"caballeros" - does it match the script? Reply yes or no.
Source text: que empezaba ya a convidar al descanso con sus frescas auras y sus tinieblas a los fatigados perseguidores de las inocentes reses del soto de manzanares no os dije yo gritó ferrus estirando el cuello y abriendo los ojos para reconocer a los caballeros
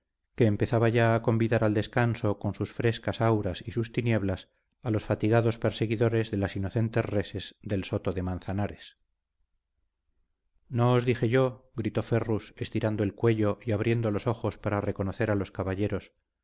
yes